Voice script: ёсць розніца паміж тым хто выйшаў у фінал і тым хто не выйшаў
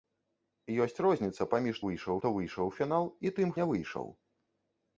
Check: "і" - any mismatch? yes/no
no